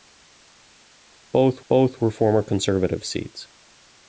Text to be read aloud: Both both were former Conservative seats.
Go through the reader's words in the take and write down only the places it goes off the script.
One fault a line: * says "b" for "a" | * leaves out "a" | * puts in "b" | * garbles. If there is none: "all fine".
all fine